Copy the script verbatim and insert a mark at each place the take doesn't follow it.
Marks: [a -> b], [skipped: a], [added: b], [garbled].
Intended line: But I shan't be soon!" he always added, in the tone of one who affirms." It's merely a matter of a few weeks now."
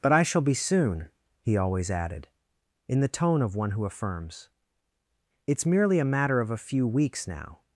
But I [shan't -> shall] be soon!" he always added, in the tone of one who affirms." It's merely a matter of a few weeks now."